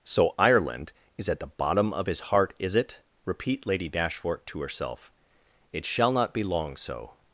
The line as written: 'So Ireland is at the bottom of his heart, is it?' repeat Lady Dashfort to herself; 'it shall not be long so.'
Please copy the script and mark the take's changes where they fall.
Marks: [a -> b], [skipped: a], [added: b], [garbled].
'So Ireland is at the bottom of his heart, is it?' repeat Lady Dashfort to herself; 'it shall not be long so.'